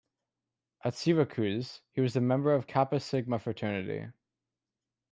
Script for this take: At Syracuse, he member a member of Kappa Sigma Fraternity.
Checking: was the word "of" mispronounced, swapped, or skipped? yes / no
no